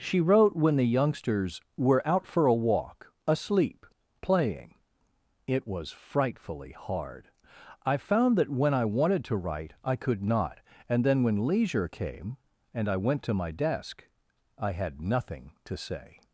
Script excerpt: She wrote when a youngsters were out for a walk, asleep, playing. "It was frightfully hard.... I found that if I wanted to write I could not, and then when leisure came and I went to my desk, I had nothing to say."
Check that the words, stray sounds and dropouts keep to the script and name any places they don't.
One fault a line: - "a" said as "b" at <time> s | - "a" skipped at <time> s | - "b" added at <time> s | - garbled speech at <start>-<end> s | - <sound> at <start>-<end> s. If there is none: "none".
- "a" said as "the" at 0.8 s
- "if" said as "when" at 8.5 s